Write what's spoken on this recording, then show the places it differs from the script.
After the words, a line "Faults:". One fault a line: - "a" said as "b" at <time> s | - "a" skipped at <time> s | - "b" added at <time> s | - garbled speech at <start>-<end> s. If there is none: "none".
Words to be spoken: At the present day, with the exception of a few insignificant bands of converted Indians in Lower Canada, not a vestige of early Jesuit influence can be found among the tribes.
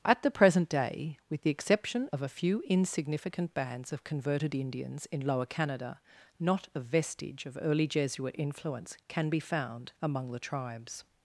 At the present day, with the exception of a few insignificant bands of converted Indians in Lower Canada, not a vestige of early Jesuit influence can be found among the tribes.
Faults:
none